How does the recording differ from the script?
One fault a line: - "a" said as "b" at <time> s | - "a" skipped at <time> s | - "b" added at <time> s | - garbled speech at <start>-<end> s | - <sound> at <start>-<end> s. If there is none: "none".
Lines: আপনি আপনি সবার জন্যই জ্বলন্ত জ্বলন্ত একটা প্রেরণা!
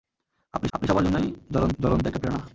none